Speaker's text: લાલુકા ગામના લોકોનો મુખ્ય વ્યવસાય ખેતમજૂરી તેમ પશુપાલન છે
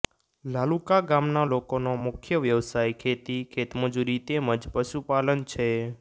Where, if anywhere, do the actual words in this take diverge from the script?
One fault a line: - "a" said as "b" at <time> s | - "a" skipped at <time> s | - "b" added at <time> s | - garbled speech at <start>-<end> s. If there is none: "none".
- "ખેતી" added at 3.0 s
- "જ" added at 4.6 s